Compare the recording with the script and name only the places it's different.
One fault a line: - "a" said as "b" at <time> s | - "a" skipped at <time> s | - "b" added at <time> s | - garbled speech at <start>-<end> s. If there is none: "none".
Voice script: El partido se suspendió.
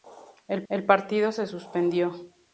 - "el" added at 0.7 s